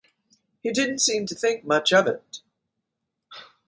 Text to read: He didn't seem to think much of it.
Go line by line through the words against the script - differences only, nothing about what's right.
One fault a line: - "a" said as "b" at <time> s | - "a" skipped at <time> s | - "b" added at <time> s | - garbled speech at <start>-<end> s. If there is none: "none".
none